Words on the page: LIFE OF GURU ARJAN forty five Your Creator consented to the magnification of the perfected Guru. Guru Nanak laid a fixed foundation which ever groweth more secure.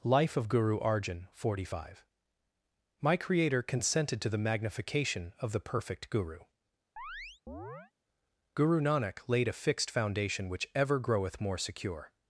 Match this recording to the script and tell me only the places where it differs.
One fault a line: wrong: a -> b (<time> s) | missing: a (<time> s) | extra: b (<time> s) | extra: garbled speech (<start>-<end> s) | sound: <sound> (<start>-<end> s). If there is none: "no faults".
wrong: Your -> My (3.0 s)
wrong: perfected -> perfect (5.6 s)
sound: chirp (7.0-7.9 s)